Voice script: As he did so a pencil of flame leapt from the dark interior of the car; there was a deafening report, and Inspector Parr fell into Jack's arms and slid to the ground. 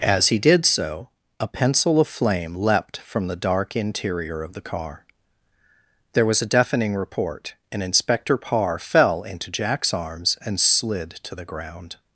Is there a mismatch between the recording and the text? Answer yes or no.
no